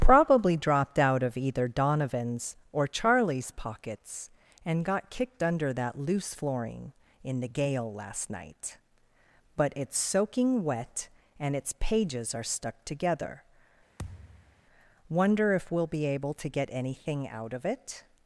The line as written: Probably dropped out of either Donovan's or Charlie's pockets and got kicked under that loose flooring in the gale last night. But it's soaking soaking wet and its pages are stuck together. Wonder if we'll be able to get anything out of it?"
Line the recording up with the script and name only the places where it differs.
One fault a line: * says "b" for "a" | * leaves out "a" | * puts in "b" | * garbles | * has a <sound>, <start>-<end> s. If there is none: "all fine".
* leaves out "soaking"
* has a thud, 14.0-14.6 s